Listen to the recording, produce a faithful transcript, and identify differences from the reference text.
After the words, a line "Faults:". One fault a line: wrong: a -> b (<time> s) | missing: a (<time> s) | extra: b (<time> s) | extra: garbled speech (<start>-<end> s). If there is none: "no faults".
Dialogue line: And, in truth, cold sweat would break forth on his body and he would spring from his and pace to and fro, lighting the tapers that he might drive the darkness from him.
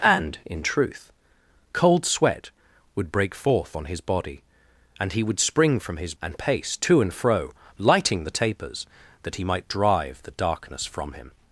And, in truth, cold sweat would break forth on his body and he would spring from his and pace to and fro, lighting the tapers that he might drive the darkness from him.
Faults:
no faults